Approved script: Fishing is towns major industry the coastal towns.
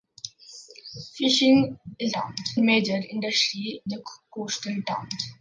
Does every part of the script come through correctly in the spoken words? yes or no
yes